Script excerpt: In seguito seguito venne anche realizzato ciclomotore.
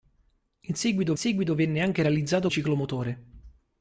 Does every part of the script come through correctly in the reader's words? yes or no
yes